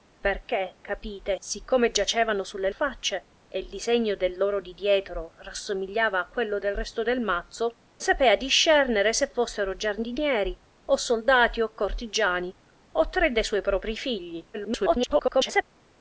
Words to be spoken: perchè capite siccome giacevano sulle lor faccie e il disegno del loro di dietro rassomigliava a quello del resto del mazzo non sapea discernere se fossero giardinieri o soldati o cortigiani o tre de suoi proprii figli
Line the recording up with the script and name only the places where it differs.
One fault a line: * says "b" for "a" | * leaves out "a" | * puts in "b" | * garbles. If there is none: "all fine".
* leaves out "lor"
* leaves out "non"
* garbles